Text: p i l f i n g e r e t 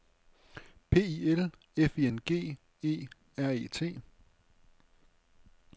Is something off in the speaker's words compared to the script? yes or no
no